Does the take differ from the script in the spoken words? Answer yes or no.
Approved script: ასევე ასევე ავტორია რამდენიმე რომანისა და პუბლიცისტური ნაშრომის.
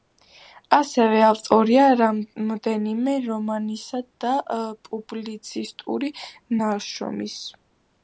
yes